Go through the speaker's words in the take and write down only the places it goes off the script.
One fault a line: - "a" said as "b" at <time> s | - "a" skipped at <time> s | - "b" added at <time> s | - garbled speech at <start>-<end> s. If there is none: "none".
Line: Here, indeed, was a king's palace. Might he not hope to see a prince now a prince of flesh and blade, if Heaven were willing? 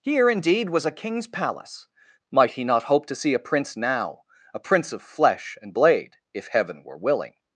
none